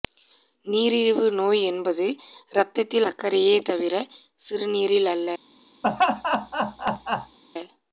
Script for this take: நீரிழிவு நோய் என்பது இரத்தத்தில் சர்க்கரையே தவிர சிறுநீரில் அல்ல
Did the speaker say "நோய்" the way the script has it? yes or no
yes